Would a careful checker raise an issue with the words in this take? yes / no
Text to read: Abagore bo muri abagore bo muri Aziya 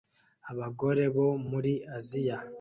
yes